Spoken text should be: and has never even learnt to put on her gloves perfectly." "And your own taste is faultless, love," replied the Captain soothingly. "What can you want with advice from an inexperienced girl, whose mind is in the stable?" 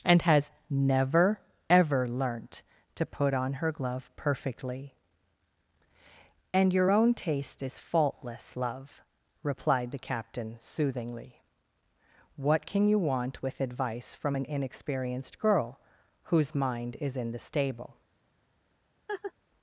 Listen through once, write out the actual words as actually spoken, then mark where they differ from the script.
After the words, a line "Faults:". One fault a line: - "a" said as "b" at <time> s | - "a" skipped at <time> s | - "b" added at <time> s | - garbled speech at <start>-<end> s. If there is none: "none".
and has never ever learnt to put on her glove perfectly." "And your own taste is faultless, love," replied the Captain soothingly. "What can you want with advice from an inexperienced girl, whose mind is in the stable?"
Faults:
- "even" said as "ever" at 1.7 s
- "gloves" said as "glove" at 3.7 s